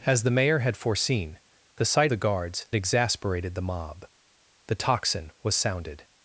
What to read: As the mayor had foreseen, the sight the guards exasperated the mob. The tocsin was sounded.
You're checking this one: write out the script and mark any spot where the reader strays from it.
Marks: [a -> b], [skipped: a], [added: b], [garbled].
As the mayor had foreseen, the sight the guards exasperated the mob. The tocsin was sounded.